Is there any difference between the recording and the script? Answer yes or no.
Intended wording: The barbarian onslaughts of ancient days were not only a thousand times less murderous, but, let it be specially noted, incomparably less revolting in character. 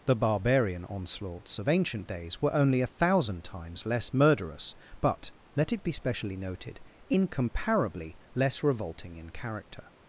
yes